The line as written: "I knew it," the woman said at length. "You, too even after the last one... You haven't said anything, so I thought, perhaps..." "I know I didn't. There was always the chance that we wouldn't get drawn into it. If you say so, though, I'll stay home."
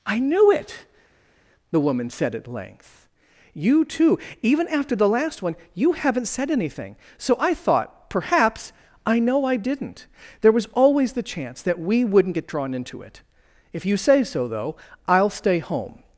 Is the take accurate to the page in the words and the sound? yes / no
yes